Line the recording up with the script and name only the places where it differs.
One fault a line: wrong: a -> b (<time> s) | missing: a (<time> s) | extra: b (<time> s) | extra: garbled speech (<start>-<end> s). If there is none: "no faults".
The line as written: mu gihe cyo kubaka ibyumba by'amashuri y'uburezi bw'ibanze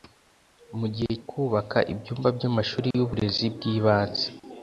missing: cyo (1.1 s)